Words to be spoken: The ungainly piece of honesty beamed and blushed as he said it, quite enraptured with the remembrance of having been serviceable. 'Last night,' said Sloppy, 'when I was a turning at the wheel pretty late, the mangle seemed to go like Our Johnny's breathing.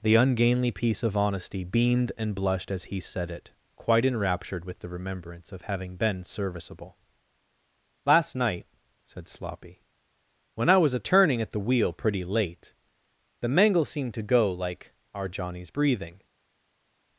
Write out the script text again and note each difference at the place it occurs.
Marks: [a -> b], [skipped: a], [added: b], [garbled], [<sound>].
The ungainly piece of honesty beamed and blushed as he said it, quite enraptured with the remembrance of having been serviceable. 'Last night,' said Sloppy, 'when I was a turning at the wheel pretty late, the mangle seemed to go like Our Johnny's breathing.